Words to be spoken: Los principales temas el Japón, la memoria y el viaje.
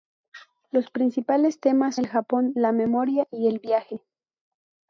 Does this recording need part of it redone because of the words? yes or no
no